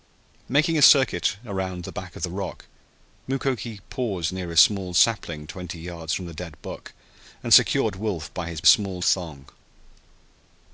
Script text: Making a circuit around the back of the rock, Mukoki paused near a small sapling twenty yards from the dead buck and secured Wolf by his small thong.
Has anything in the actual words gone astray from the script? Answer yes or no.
no